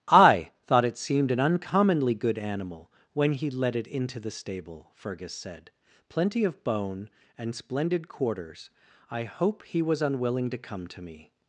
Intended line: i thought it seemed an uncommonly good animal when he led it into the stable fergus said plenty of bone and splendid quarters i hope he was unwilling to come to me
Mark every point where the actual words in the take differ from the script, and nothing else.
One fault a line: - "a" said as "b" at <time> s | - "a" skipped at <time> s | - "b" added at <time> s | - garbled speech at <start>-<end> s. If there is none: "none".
none